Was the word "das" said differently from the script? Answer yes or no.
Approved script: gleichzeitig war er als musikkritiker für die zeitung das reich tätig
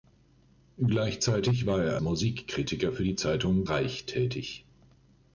yes